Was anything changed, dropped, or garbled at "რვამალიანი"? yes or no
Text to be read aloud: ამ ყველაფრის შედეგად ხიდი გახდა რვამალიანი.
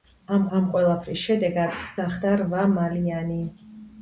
no